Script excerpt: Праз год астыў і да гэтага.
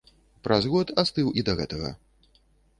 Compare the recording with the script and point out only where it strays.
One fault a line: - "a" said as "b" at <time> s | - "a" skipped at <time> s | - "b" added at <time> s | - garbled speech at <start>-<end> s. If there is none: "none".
none